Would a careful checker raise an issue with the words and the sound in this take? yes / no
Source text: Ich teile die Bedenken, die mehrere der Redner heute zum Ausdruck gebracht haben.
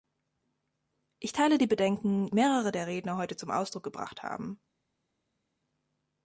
yes